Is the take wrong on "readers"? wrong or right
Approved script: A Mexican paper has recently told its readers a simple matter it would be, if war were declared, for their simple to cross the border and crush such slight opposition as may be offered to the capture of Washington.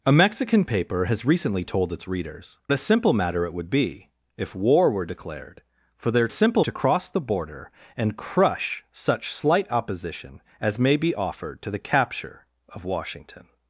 right